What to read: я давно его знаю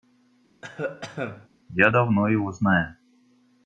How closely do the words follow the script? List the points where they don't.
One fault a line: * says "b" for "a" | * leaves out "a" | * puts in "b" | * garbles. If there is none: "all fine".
all fine